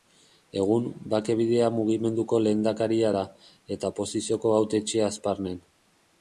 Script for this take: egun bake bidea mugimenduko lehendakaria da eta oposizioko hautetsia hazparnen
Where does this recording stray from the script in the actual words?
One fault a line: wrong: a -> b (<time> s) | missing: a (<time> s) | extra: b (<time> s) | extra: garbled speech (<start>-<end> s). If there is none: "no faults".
no faults